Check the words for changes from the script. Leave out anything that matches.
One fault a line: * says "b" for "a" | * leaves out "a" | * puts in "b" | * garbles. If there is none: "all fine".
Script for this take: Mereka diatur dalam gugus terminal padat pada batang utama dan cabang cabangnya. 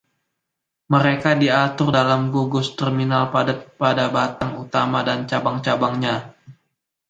all fine